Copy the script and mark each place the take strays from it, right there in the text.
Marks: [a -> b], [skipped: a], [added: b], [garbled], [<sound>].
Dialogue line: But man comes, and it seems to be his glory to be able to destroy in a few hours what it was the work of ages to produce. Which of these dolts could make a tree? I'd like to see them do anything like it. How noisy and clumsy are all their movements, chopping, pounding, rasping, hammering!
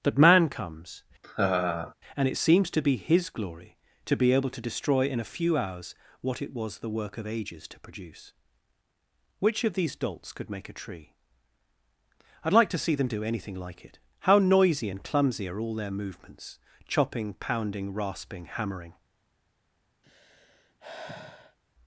[But -> That] man comes, [laugh] and it seems to be his glory to be able to destroy in a few hours what it was the work of ages to produce. Which of these dolts could make a tree? I'd like to see them do anything like it. How noisy and clumsy are all their movements, chopping, pounding, rasping, hammering! [sigh]